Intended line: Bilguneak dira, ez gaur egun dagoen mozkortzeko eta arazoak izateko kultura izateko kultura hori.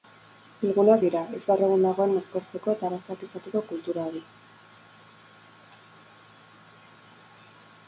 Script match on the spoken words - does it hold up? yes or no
no